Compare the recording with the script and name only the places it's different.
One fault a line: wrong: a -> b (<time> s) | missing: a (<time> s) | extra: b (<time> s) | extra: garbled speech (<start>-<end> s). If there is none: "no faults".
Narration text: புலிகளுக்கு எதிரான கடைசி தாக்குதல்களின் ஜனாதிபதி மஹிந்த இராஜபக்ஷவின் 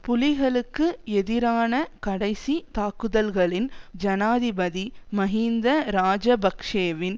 no faults